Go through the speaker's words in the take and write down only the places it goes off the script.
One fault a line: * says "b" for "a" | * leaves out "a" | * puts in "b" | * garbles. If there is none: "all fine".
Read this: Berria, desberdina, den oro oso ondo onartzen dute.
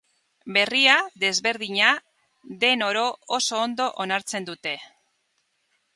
all fine